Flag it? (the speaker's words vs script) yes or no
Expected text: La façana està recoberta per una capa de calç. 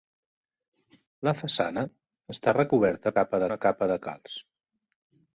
yes